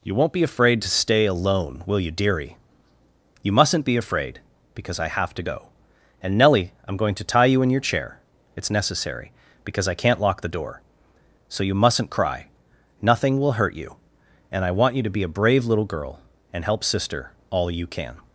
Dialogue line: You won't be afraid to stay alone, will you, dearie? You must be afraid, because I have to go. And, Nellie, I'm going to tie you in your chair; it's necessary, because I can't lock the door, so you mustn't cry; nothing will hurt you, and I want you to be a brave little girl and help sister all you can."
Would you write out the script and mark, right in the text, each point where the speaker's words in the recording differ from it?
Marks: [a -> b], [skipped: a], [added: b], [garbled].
You won't be afraid to stay alone, will you, dearie? You [must -> mustn't] be afraid, because I have to go. And, Nellie, I'm going to tie you in your chair; it's necessary, because I can't lock the door, so you mustn't cry; nothing will hurt you, and I want you to be a brave little girl and help sister all you can."